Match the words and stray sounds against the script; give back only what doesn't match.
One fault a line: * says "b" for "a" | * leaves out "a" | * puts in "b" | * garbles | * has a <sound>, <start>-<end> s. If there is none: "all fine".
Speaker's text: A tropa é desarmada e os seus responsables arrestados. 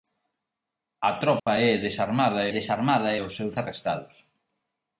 * has a dropout, 1.4-1.5 s
* puts in "desarmada"
* leaves out "responsables"